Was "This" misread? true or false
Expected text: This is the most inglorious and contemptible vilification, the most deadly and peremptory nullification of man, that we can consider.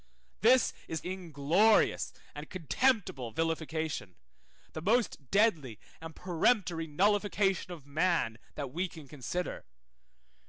false